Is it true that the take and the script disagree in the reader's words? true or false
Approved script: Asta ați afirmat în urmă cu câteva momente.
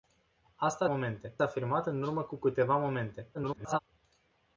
true